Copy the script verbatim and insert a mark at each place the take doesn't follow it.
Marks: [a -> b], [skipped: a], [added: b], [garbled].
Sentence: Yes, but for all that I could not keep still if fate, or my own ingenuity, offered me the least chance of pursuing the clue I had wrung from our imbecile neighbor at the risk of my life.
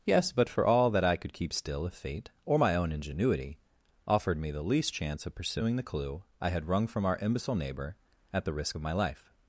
Yes, but for all that I could [skipped: not] keep still if fate, or my own ingenuity, offered me the least chance of pursuing the clue I had wrung from our imbecile neighbor at the risk of my life.